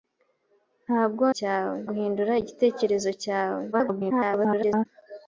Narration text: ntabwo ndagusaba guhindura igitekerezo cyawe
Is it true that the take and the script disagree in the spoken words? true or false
true